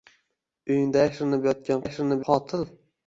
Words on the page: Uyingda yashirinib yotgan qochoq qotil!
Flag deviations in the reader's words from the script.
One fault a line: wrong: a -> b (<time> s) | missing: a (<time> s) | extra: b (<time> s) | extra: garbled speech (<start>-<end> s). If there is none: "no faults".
wrong: qochoq -> yashirinib (1.8 s)